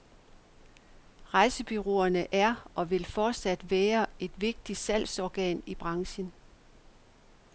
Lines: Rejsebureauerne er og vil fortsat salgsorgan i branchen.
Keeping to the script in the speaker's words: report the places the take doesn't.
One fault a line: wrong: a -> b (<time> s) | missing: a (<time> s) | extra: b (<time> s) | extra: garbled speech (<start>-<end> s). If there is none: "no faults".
extra: være et vigtigt (3.7 s)